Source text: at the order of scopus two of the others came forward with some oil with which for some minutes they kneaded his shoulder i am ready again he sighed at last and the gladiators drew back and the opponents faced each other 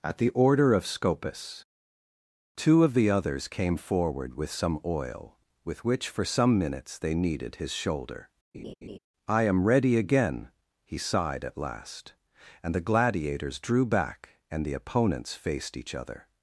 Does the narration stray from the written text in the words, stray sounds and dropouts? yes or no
yes